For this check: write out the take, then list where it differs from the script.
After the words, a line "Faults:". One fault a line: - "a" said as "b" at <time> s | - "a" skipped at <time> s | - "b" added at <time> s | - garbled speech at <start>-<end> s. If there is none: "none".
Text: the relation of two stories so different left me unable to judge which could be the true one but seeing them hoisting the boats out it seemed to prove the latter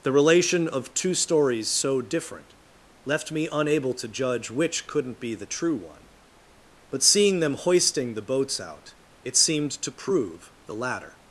the relation of two stories so different left me unable to judge which couldn't be the true one but seeing them hoisting the boats out it seemed to prove the latter
Faults:
- "could" said as "couldn't" at 4.9 s